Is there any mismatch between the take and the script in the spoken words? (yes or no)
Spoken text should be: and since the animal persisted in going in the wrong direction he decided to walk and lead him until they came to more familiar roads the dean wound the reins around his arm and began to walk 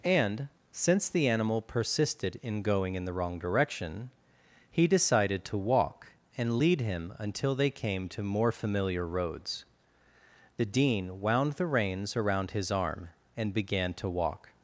no